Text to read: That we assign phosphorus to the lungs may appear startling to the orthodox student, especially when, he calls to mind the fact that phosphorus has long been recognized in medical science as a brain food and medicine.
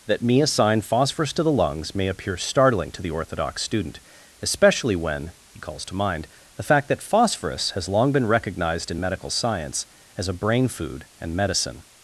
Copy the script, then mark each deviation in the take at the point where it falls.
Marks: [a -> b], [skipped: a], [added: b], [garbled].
That [we -> me] assign phosphorus to the lungs may appear startling to the orthodox student, especially when, he calls to mind the fact that phosphorus has long been recognized in medical science as a brain food and medicine.